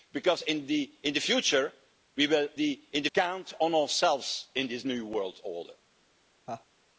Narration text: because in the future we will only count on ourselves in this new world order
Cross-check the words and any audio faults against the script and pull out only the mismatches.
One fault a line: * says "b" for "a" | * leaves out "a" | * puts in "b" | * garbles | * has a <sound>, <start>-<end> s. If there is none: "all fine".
* says "the" for "only"
* has a laugh, 6.5-6.7 s